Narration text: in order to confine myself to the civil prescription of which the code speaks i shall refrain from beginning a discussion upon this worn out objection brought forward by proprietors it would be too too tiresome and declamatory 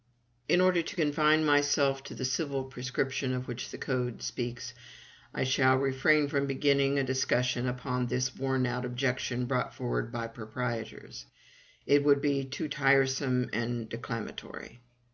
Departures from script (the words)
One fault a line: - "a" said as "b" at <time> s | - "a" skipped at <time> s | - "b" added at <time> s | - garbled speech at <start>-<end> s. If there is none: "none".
- "too" skipped at 12.7 s